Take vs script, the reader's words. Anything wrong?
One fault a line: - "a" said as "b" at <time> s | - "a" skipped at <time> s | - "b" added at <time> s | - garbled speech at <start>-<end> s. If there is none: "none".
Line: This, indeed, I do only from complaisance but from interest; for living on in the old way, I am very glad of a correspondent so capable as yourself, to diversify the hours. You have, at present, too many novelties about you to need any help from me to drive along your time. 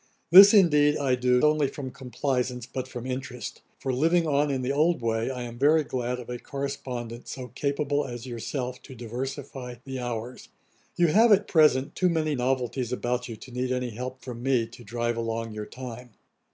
none